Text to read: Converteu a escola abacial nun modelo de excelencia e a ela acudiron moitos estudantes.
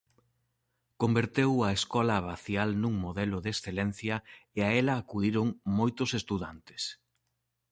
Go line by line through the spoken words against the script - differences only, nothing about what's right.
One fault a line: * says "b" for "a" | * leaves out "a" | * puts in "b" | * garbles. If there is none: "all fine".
all fine